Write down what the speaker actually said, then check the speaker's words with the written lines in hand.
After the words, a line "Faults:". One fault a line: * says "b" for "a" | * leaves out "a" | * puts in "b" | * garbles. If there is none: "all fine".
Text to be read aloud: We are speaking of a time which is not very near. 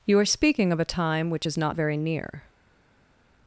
You are speaking of a time which is not very near.
Faults:
* says "You" for "We"